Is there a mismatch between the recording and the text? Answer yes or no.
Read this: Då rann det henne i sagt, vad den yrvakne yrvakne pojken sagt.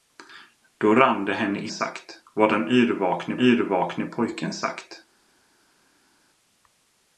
no